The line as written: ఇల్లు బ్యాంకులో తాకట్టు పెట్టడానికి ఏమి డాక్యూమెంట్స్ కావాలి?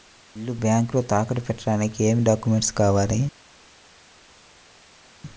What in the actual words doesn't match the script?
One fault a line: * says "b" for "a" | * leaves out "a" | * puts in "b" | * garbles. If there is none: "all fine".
all fine